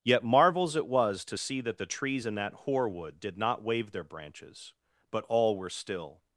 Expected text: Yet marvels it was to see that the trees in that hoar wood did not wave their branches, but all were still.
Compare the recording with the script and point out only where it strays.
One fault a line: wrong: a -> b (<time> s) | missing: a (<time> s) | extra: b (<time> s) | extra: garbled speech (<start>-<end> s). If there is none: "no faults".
no faults